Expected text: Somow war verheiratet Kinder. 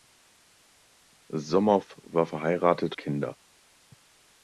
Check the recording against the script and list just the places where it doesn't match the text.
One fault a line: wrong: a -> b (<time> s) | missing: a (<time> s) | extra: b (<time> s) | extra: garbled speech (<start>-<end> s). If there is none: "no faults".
no faults